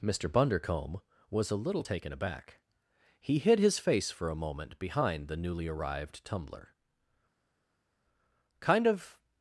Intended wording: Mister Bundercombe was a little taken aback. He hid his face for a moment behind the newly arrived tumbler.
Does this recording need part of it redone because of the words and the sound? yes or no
yes